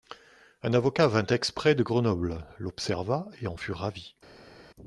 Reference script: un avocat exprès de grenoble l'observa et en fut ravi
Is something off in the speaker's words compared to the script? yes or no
yes